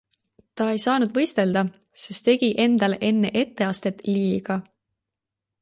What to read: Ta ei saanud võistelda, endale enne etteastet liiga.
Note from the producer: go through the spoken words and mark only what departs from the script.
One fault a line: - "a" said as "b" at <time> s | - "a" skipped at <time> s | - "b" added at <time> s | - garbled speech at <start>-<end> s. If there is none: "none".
- "sest tegi" added at 2.0 s